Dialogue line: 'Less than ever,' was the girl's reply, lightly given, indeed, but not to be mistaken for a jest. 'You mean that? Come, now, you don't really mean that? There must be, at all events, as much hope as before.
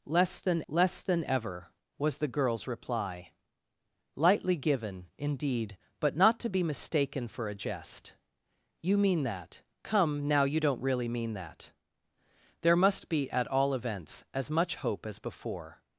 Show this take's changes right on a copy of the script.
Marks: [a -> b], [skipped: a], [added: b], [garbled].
'Less than [added: less than] ever,' was the girl's reply, lightly given, indeed, but not to be mistaken for a jest. 'You mean that? Come, now, you don't really mean that? There must be, at all events, as much hope as before.